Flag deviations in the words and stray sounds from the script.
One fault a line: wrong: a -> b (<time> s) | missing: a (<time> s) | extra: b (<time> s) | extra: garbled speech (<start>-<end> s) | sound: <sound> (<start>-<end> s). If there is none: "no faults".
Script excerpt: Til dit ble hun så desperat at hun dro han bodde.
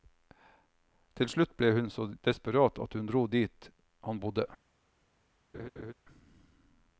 wrong: dit -> slutt (1.3 s)
extra: dit (3.4 s)
sound: laugh (5.5-5.9 s)